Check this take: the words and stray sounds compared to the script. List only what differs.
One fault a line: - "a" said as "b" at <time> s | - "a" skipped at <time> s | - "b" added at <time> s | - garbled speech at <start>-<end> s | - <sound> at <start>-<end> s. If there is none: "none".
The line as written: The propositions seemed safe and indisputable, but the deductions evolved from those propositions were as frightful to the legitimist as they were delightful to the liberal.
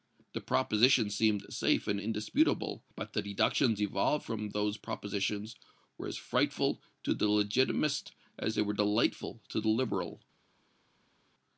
none